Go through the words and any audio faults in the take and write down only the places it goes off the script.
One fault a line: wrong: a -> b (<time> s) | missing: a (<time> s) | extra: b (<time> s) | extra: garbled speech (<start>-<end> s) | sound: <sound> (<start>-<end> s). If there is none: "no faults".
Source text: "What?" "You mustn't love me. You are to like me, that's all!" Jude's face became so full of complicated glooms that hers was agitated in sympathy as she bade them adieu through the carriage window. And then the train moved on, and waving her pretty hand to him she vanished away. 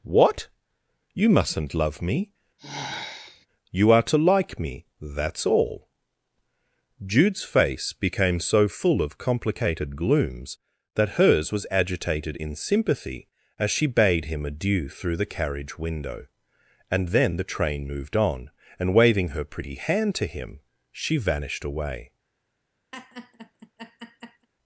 sound: sigh (2.6-3.5 s)
wrong: them -> him (14.3 s)
sound: laugh (22.9-24.5 s)